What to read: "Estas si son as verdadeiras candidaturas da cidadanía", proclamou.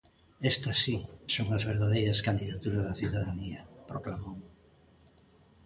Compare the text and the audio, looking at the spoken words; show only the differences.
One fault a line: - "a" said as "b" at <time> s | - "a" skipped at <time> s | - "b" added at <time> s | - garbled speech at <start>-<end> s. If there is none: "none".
none